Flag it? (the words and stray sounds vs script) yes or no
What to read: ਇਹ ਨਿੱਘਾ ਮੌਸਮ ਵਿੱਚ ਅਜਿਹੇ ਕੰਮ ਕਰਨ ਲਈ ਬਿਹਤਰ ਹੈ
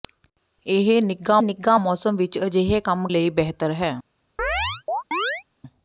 yes